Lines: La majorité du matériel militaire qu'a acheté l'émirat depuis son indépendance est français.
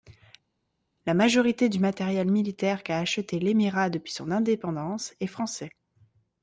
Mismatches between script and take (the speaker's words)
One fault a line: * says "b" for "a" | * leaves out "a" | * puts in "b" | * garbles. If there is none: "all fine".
all fine